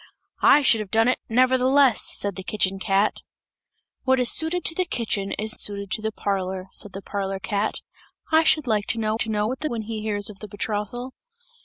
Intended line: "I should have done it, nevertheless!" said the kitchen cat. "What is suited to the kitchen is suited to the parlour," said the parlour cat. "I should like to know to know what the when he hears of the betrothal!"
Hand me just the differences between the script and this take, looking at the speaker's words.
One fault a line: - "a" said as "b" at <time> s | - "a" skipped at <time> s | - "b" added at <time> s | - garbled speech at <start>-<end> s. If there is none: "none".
none